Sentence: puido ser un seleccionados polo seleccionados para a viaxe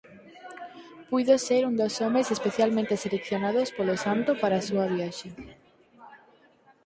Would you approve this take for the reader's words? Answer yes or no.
no